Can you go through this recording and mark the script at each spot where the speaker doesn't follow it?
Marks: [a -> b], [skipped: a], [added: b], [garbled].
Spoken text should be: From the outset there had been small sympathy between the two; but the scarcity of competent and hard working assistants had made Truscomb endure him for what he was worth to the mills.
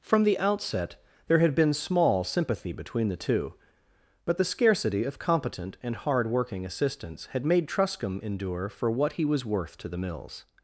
From the outset there had been small sympathy between the two; but the scarcity of competent and hard working assistants had made Truscomb endure [skipped: him] for what he was worth to the mills.